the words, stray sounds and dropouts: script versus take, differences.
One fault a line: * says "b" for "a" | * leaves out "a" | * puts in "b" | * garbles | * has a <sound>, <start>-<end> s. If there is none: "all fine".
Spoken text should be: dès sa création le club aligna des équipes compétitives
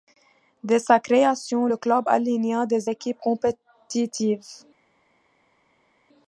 all fine